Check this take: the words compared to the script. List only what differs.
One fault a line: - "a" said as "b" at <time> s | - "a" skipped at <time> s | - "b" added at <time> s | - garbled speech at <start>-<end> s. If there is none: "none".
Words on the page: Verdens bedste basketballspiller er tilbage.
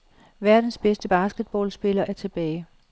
none